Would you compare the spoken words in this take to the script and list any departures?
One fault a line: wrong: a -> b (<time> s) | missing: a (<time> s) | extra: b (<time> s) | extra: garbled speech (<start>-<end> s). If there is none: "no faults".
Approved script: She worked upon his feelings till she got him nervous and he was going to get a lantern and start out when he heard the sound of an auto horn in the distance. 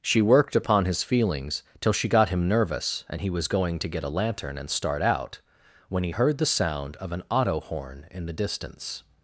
no faults